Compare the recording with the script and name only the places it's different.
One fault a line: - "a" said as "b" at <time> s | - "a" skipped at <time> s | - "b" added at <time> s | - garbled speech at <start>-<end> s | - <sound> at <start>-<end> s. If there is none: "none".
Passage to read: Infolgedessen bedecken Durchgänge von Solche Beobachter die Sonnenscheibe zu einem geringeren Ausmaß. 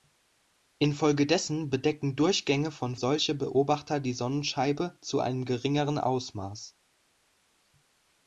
none